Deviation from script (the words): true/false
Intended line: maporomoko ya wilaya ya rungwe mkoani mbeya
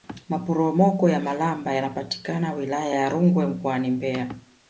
true